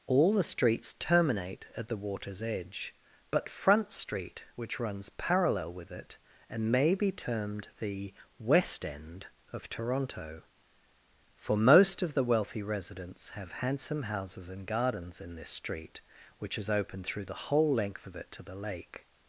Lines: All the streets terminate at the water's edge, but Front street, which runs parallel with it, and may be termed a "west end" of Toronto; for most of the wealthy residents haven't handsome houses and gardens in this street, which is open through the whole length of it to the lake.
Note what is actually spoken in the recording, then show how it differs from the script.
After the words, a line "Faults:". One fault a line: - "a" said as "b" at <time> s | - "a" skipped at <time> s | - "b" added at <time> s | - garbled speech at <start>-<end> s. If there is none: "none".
All the streets terminate at the water's edge, but Front street, which runs parallel with it, and may be termed the "west end" of Toronto; for most of the wealthy residents have handsome houses and gardens in this street, which is open through the whole length of it to the lake.
Faults:
- "a" said as "the" at 7.8 s
- "haven't" said as "have" at 13.3 s